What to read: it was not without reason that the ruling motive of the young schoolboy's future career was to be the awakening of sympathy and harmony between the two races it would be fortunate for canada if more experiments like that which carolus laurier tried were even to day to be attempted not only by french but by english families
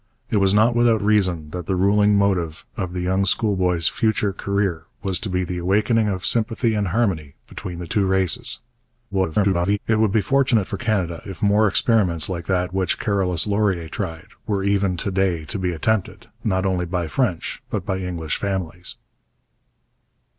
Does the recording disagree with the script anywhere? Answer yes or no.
yes